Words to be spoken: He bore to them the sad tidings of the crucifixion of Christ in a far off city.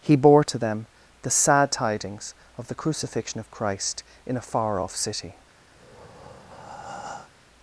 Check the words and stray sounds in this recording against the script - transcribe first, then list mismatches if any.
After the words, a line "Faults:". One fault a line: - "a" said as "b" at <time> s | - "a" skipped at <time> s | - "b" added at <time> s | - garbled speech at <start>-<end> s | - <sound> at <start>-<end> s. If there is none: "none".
He bore to them the sad tidings of the crucifixion of Christ in a far off city.
Faults:
- breath at 5.7-7.3 s